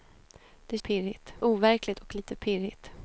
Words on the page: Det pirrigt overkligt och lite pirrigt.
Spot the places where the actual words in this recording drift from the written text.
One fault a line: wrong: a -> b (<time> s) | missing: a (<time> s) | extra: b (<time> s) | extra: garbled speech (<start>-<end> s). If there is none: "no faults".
no faults